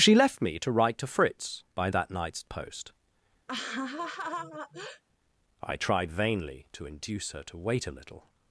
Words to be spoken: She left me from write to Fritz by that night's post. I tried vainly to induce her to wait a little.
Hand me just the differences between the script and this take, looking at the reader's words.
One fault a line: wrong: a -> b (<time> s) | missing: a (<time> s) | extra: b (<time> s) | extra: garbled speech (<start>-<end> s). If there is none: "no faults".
wrong: from -> to (0.6 s)